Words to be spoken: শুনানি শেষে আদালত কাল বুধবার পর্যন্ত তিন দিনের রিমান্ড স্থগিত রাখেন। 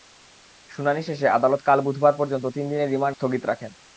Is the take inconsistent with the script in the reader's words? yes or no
no